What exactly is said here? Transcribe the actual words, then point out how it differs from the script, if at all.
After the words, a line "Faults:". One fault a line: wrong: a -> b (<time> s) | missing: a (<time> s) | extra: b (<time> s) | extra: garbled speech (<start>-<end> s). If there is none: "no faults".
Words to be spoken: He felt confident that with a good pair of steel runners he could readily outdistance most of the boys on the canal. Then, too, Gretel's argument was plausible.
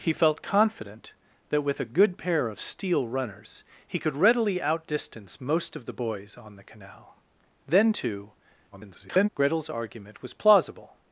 He felt confident that with a good pair of steel runners he could readily outdistance most of the boys on the canal. Then, too, [garbled] Gretel's argument was plausible.
Faults:
extra: garbled speech (8.7-9.3 s)